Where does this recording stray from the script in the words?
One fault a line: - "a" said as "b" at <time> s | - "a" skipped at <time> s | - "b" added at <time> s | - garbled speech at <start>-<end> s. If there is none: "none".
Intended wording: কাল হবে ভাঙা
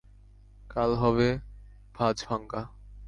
- "ভাঁজ" added at 1.9 s